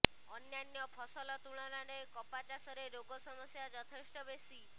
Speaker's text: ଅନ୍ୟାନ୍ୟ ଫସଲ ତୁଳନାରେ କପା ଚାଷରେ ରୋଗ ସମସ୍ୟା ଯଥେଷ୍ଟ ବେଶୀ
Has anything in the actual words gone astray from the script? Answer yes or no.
no